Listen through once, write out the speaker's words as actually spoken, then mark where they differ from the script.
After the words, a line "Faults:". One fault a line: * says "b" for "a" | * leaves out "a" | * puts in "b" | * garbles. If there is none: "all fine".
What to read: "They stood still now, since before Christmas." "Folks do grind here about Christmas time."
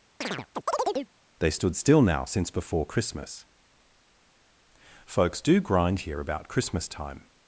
"They stood still now, since before Christmas." "Folks do grind here about Christmas time."
Faults:
all fine